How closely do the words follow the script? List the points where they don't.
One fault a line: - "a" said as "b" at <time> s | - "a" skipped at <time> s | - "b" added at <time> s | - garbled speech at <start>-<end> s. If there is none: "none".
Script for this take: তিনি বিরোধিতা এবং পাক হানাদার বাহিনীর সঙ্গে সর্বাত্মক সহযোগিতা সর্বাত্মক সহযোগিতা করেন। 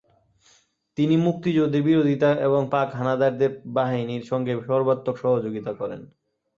- "মুক্তিযুদ্ধের" added at 1.2 s
- "সর্বাত্মক সহযোগিতা" skipped at 5.7 s